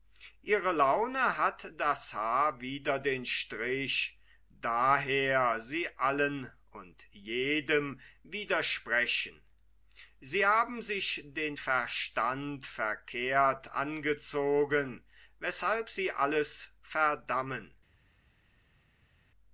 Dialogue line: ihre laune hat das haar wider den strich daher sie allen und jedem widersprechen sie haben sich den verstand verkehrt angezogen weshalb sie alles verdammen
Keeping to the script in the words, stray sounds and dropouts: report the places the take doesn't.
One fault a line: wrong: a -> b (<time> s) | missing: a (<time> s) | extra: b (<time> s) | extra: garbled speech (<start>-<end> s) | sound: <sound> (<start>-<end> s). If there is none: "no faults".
no faults